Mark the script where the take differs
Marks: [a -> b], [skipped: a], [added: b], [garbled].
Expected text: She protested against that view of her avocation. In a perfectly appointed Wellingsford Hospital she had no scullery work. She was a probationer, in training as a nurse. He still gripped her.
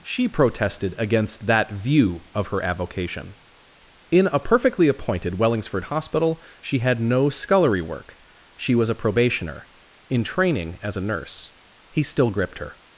She protested against that view of her avocation. In a perfectly appointed Wellingsford Hospital she had no scullery work. She was a probationer, in training as a nurse. He still gripped her.